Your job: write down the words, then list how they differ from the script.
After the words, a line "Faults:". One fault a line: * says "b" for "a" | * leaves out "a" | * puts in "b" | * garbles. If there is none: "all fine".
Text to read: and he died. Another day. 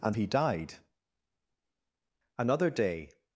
and he died. Another day.
Faults:
all fine